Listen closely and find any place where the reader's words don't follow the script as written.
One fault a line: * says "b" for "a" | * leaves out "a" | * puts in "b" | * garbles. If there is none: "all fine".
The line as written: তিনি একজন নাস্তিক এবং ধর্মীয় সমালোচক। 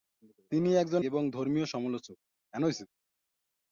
* leaves out "নাস্তিক"